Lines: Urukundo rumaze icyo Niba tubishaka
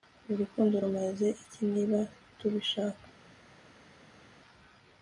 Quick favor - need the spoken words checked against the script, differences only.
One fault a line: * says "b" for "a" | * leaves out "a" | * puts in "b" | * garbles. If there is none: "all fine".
* says "iki" for "icyo"